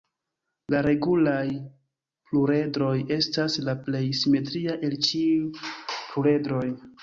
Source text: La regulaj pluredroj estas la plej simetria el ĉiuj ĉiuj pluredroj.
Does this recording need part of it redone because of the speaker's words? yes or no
yes